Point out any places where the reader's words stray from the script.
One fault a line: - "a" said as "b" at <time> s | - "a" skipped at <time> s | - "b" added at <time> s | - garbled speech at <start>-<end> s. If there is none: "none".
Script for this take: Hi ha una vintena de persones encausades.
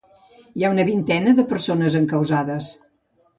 none